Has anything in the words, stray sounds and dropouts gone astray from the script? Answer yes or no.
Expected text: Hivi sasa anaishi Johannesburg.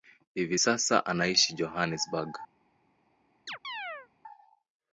yes